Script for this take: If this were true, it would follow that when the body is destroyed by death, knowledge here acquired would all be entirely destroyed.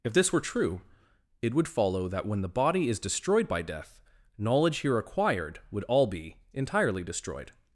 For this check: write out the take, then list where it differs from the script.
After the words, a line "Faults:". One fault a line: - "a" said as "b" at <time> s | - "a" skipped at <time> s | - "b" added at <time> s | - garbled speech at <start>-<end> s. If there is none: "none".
If this were true, it would follow that when the body is destroyed by death, knowledge here acquired would all be entirely destroyed.
Faults:
none